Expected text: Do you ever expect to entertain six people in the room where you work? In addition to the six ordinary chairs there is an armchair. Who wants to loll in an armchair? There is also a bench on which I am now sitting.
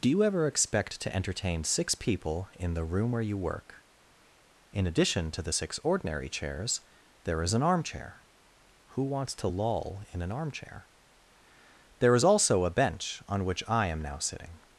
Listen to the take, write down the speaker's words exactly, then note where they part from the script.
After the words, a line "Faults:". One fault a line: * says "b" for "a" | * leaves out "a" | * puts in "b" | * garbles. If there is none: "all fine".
Do you ever expect to entertain six people in the room where you work? In addition to the six ordinary chairs there is an armchair. Who wants to loll in an armchair? There is also a bench on which I am now sitting.
Faults:
all fine